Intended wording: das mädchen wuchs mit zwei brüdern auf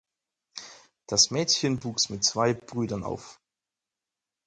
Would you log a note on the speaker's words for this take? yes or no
no